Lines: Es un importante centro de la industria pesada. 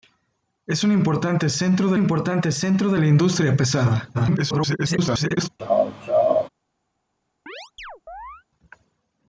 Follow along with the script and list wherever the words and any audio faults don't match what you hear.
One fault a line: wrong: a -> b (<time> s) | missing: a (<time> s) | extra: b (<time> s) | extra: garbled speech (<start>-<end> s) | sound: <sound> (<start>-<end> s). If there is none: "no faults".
extra: importante centro de (2.0 s)
extra: garbled speech (4.1-5.5 s)
sound: laugh (5.6-6.5 s)
sound: chirp (7.5-8.4 s)